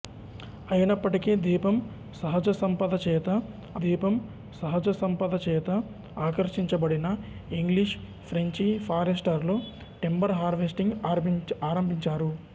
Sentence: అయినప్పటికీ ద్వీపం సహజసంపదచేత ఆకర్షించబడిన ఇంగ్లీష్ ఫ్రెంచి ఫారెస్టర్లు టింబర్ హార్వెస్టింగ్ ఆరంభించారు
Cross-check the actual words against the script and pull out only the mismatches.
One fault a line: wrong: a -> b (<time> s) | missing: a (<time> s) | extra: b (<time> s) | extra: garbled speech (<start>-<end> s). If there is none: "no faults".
extra: ద్వీపం సహజసంపదచేత (3.8 s)